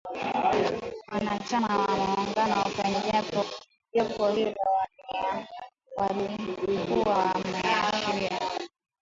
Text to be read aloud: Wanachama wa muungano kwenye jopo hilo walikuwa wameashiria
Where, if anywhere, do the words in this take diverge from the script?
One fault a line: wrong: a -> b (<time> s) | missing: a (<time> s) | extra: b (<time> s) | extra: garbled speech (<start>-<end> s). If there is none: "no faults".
no faults